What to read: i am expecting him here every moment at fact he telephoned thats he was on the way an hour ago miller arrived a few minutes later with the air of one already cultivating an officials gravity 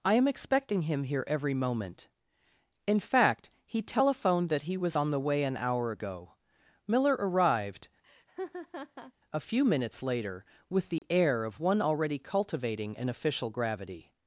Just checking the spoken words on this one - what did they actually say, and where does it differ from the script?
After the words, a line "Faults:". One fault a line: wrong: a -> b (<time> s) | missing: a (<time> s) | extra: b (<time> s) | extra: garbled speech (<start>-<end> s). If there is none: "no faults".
i am expecting him here every moment in fact he telephoned that he was on the way an hour ago miller arrived a few minutes later with the air of one already cultivating an official gravity
Faults:
wrong: at -> in (2.9 s)
wrong: thats -> that (4.5 s)
wrong: officials -> official (13.1 s)